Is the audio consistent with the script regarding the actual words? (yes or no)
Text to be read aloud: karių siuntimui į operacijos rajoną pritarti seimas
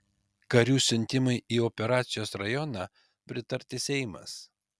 yes